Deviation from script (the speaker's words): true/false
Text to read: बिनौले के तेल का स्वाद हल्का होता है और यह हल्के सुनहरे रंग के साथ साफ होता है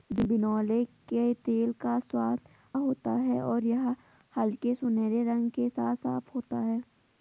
true